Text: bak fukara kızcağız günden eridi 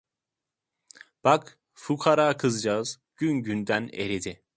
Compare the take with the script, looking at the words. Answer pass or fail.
fail